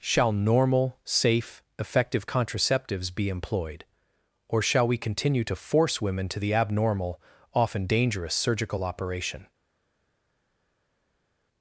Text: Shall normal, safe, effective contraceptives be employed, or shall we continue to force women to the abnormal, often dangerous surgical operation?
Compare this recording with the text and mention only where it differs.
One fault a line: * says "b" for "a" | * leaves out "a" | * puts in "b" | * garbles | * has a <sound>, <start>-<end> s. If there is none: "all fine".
all fine